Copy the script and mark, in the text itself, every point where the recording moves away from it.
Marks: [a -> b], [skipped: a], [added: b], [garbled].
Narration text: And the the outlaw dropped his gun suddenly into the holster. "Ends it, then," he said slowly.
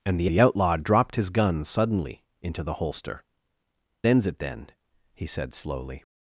And the the outlaw dropped his gun suddenly into the holster. "Ends it, then," he said slowly.